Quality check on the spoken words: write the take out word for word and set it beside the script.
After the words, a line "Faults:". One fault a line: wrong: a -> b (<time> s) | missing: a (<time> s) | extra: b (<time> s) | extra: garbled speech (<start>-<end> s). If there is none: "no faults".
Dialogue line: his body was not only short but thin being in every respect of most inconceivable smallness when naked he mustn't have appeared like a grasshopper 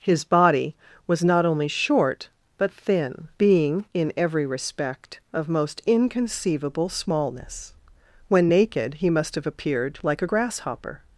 his body was not only short but thin being in every respect of most inconceivable smallness when naked he must have appeared like a grasshopper
Faults:
wrong: mustn't -> must (9.1 s)